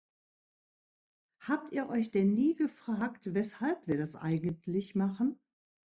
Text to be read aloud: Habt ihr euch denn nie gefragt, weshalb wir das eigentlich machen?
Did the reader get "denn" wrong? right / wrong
right